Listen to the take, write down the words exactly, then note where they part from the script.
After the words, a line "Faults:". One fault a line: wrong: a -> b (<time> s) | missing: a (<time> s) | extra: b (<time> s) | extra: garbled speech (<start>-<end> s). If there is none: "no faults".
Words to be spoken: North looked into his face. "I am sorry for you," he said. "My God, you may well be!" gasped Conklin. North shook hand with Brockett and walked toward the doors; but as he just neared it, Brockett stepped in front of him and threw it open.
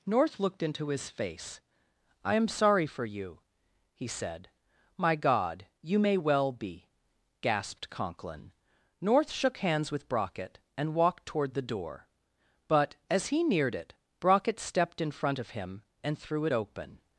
North looked into his face. "I am sorry for you," he said. "My God, you may well be!" gasped Conklin. North shook hands with Brockett and walked toward the door; but as he neared it, Brockett stepped in front of him and threw it open.
Faults:
wrong: hand -> hands (9.6 s)
wrong: doors -> door (11.6 s)
missing: just (13.4 s)